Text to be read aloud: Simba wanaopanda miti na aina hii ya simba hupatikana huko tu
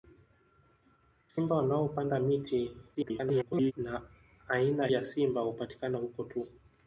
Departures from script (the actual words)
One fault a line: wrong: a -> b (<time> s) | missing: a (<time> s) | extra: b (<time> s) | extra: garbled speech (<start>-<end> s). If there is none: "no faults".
extra: garbled speech (2.9-3.7 s)
missing: hii (4.9 s)